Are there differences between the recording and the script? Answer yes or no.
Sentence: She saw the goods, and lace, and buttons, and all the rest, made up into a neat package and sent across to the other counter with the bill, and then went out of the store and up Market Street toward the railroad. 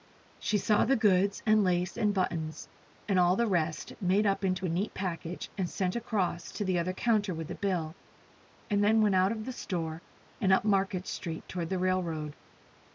no